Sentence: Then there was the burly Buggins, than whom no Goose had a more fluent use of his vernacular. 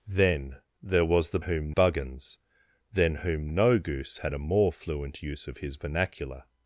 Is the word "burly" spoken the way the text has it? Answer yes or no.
no